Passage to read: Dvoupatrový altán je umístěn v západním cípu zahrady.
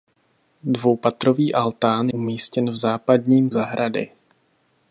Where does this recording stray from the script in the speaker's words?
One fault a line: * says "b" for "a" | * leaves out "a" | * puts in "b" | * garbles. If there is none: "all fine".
* leaves out "je"
* leaves out "cípu"